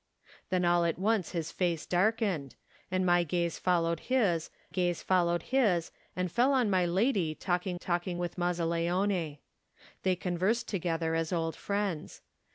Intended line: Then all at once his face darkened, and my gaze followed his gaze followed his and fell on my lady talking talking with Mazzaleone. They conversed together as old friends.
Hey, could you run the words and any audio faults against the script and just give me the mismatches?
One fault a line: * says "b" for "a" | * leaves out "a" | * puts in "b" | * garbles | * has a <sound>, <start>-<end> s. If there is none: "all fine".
all fine